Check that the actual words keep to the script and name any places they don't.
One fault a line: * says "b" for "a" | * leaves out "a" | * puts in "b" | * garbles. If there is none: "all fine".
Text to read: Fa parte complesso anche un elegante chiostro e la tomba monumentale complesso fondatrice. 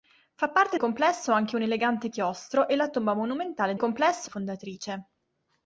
all fine